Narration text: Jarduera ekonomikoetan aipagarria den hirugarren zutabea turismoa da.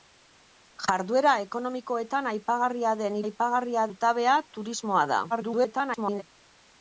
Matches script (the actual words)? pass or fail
fail